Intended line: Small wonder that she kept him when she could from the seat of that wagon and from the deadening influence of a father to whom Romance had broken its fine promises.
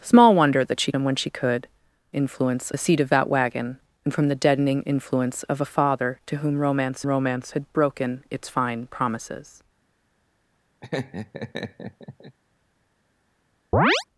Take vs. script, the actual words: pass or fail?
fail